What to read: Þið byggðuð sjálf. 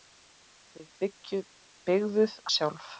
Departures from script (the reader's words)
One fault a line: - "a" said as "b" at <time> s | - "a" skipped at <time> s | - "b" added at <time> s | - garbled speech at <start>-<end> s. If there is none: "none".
none